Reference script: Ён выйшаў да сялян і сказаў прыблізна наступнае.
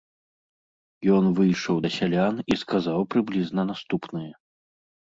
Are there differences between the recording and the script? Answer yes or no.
no